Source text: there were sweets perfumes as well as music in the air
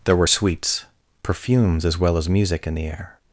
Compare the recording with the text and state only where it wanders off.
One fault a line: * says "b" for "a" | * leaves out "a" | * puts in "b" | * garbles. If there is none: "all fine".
all fine